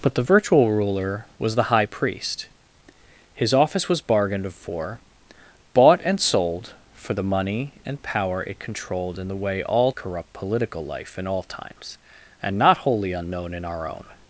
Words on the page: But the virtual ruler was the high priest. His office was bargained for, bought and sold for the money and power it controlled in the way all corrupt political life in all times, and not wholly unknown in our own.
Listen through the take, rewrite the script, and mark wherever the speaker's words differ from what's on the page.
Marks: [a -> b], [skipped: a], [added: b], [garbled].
But the virtual ruler was the high priest. His office was bargained for, bought and sold for the money and power it controlled in the way all corrupt political life in all times, and not wholly unknown in our own.